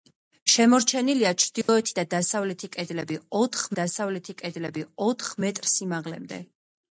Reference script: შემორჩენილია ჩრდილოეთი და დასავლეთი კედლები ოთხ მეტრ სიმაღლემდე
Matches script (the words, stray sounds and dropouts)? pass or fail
fail